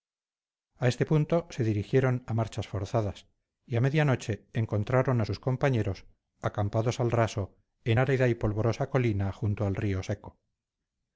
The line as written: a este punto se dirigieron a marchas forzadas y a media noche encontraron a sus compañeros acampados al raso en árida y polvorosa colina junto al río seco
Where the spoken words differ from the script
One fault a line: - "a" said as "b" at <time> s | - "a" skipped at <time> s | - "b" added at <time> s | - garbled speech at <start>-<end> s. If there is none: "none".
none